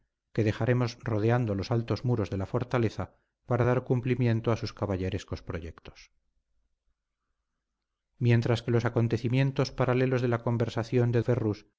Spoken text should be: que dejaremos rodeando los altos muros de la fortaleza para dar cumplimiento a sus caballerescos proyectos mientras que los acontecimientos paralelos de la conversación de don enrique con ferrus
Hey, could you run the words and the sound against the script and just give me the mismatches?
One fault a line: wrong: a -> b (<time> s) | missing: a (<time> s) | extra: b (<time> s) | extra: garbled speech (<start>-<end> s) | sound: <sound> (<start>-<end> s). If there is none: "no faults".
missing: don enrique con (11.2 s)